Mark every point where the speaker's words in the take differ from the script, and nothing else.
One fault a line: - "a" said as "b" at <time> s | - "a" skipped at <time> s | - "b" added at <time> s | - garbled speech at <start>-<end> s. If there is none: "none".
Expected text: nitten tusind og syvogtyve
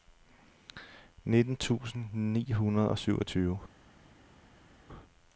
- "ni hundrede" added at 2.1 s